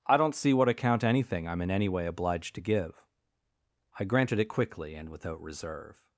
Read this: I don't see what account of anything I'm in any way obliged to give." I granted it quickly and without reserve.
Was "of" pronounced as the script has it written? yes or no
no